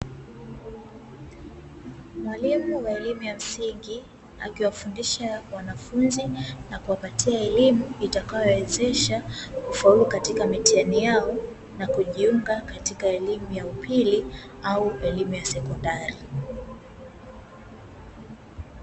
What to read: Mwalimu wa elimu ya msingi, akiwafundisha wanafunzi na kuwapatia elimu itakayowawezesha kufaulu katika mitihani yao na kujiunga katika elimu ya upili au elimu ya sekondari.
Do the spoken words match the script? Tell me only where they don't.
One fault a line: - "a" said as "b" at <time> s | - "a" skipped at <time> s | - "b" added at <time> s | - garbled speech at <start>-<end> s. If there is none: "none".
none